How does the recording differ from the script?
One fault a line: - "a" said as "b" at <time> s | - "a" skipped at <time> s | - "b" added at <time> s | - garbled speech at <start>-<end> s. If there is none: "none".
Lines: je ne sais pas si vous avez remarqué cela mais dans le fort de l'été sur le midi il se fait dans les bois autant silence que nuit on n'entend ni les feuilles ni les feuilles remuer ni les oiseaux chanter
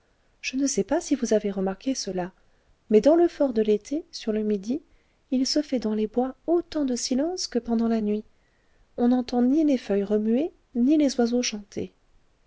- "de" added at 6.8 s
- "pendant la" added at 7.6 s
- "ni les feuilles" skipped at 10.0 s